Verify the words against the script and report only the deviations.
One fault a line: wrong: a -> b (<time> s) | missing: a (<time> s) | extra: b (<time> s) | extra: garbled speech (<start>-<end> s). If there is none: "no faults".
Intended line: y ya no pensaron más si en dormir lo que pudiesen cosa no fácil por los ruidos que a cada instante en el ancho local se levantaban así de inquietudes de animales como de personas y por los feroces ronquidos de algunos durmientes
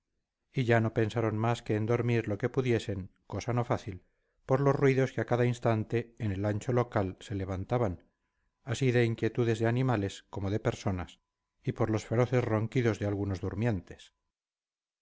wrong: si -> que (1.6 s)